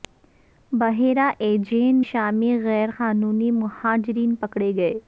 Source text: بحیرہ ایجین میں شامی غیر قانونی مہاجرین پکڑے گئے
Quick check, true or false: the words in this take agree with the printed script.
false